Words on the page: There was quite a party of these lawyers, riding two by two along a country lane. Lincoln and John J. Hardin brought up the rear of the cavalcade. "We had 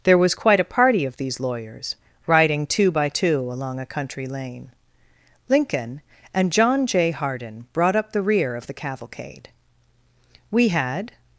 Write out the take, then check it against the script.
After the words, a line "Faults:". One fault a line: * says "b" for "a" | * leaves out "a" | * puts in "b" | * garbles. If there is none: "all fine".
There was quite a party of these lawyers, riding two by two along a country lane. Lincoln and John J. Hardin brought up the rear of the cavalcade. "We had
Faults:
all fine